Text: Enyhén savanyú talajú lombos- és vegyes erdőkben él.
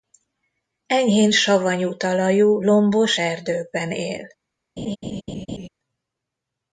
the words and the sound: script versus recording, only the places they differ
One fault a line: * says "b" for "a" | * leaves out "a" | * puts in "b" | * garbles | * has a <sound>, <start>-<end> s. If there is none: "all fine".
* leaves out "és vegyes"
* has a laugh, 4.8-5.7 s